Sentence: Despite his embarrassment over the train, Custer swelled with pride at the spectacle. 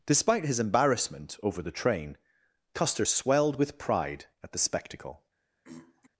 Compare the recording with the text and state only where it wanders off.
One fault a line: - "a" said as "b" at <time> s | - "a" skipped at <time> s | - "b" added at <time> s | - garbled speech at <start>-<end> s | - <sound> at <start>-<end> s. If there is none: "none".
- throat clearing at 5.6-6.1 s